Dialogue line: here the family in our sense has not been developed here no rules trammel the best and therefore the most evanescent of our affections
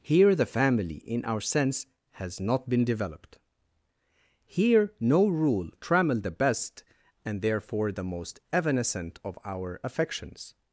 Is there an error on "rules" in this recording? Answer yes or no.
yes